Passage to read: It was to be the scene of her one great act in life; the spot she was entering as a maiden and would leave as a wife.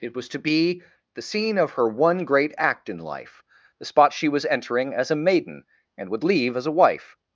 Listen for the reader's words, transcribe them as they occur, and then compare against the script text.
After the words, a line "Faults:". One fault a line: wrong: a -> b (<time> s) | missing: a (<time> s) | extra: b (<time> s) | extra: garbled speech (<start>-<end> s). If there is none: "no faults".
It was to be the scene of her one great act in life; the spot she was entering as a maiden and would leave as a wife.
Faults:
no faults